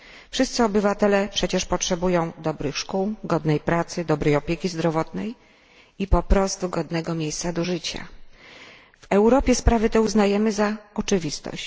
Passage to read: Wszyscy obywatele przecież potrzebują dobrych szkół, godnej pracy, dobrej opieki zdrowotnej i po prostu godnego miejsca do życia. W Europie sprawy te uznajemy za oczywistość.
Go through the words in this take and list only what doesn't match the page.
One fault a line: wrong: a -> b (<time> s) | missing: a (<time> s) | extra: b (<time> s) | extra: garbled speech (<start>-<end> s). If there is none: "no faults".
no faults